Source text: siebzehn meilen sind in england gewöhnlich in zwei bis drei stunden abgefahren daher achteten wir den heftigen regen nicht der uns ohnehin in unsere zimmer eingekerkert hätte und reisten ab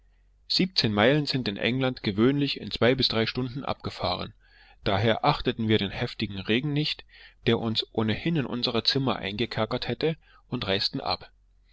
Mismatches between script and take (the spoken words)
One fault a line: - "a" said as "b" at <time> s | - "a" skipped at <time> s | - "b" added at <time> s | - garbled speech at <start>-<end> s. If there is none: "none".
none